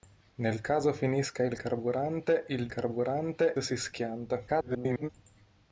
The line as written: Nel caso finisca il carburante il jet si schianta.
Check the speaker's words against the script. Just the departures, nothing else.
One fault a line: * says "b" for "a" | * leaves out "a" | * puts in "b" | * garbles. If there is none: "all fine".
* says "carburante" for "jet"
* garbles